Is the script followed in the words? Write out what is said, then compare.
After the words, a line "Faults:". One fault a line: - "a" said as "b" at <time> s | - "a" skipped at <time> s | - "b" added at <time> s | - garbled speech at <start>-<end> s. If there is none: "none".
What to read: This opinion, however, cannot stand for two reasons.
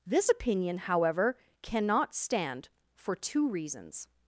This opinion, however, cannot stand for two reasons.
Faults:
none